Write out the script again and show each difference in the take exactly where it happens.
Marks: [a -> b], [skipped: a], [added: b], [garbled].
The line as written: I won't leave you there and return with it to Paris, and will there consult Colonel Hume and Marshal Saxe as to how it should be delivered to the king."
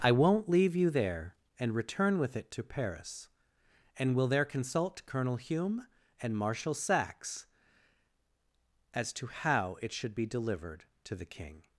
I won't leave you there and return with it to Paris, and will there consult Colonel Hume and Marshal Saxe as to how it should be delivered to the king."